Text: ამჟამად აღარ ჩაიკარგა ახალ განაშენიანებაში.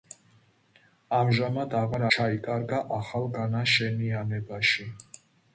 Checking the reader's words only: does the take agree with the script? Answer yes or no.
yes